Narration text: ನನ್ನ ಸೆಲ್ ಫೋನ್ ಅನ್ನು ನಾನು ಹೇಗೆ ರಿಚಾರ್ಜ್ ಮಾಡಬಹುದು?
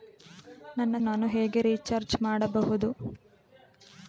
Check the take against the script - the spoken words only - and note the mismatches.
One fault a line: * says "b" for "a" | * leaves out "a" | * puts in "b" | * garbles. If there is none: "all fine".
* leaves out "ಸೆಲ್ ಫೋನ್ ಅನ್ನು"